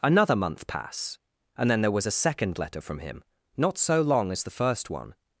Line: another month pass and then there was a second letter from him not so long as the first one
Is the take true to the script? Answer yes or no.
yes